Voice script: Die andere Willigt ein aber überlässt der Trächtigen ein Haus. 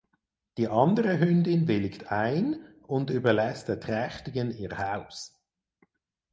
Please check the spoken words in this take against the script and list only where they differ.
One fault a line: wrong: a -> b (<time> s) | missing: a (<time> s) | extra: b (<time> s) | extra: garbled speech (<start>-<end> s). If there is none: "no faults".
extra: Hündin (1.2 s)
wrong: aber -> und (2.9 s)
wrong: ein -> ihr (4.5 s)